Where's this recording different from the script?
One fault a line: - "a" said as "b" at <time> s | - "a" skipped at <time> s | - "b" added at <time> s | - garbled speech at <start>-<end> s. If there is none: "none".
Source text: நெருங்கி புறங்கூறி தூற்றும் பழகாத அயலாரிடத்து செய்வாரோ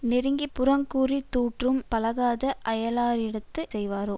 none